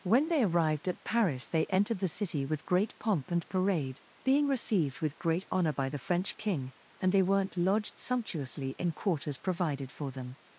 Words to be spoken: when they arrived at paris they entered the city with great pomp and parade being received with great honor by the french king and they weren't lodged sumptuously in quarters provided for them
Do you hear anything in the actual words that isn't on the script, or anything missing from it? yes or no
no